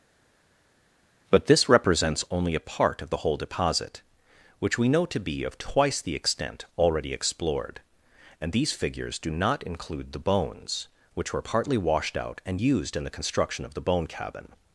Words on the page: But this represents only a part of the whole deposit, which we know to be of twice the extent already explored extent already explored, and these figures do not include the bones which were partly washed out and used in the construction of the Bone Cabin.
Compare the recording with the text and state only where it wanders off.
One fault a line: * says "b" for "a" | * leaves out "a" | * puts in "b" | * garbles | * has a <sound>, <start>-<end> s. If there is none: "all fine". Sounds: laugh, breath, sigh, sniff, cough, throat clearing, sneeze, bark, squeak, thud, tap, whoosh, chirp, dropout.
* leaves out "extent already explored"